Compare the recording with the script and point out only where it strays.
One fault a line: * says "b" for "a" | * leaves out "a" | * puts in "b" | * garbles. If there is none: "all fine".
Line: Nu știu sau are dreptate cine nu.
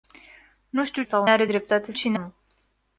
all fine